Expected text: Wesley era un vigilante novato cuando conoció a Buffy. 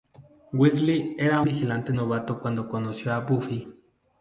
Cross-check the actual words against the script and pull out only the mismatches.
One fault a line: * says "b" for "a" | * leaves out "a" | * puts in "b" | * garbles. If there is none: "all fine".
* leaves out "un"